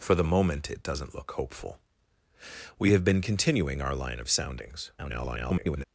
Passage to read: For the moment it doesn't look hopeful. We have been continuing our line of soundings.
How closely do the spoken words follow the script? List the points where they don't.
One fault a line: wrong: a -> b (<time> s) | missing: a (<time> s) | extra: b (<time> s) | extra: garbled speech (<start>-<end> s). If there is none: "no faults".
extra: garbled speech (5.0-5.8 s)